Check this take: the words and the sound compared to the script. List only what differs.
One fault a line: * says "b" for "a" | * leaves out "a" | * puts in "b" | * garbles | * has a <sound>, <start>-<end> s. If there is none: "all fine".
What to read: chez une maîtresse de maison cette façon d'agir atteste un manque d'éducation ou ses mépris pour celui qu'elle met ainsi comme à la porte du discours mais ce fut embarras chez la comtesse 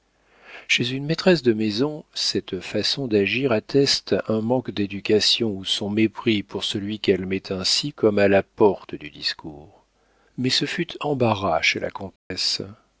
* says "son" for "ses"
* has a dropout, 12.2-12.3 s